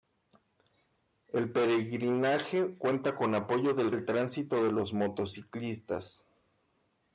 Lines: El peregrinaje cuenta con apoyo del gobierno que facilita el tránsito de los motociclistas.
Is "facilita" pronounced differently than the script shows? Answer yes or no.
yes